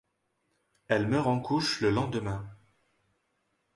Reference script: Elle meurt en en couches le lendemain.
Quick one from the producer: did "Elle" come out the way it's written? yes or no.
yes